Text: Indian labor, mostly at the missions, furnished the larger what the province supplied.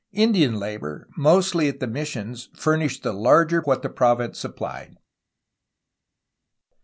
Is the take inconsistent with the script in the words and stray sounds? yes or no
no